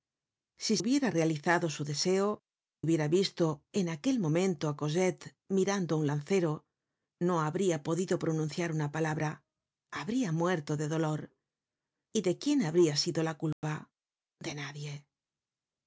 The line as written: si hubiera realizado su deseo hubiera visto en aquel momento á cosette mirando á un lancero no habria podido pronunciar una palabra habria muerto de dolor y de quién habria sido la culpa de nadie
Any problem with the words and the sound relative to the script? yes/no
yes